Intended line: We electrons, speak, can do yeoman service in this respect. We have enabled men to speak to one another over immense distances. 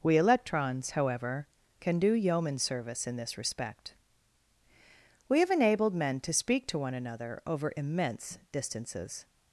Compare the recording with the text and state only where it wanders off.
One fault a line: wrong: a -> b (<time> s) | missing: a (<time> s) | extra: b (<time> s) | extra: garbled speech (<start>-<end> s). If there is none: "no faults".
wrong: speak -> however (0.9 s)